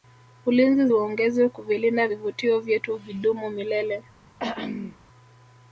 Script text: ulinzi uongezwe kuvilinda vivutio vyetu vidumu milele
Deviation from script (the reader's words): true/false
false